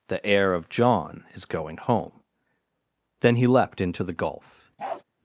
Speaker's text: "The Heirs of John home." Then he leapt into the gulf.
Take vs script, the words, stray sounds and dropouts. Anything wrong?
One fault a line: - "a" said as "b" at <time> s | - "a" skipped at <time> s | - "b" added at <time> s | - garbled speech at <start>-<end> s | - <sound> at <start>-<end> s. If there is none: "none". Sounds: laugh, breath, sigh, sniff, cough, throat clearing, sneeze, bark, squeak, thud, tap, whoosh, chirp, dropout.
- "Heirs" said as "Heir" at 0.2 s
- "is going" added at 1.3 s
- bark at 4.8-5.0 s